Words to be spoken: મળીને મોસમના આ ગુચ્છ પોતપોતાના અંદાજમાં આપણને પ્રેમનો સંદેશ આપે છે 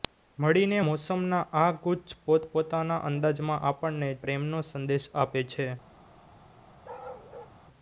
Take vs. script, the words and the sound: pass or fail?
fail